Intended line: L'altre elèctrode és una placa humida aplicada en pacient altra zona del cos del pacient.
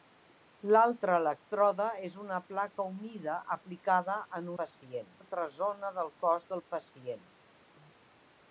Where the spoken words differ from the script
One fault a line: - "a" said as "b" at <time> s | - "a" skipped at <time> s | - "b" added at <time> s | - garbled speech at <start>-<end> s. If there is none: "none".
none